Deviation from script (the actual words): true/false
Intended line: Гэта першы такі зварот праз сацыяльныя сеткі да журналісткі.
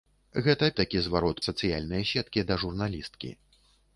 true